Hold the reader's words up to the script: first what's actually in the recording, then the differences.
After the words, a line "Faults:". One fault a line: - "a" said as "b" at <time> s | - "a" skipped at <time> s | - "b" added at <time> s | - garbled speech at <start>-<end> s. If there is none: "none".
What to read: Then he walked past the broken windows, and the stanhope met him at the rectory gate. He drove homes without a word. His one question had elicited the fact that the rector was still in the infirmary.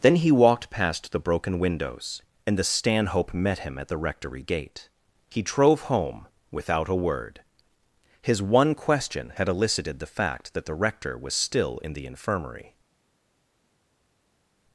Then he walked past the broken windows, and the stanhope met him at the rectory gate. He drove home without a word. His one question had elicited the fact that the rector was still in the infirmary.
Faults:
- "homes" said as "home" at 5.8 s